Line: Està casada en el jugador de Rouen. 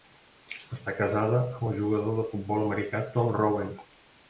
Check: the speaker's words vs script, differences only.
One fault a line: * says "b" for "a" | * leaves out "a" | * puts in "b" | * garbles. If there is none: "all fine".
* says "amb" for "en"
* puts in "futbol americà Tom"